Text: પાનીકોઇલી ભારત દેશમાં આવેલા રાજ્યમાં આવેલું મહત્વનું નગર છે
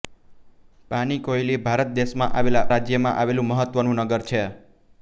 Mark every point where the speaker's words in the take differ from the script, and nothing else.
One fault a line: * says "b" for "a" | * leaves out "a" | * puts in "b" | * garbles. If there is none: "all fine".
all fine